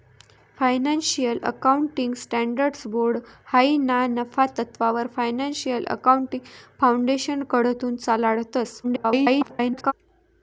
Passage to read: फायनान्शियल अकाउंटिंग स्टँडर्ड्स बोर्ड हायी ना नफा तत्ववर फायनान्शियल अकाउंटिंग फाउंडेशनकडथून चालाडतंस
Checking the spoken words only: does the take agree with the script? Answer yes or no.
no